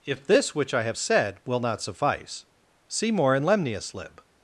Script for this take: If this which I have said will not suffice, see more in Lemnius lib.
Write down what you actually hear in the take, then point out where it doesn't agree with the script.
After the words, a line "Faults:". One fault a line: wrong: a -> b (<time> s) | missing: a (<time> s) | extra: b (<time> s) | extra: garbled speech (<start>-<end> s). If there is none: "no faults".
If this which I have said will not suffice, see more in Lemnius lib.
Faults:
no faults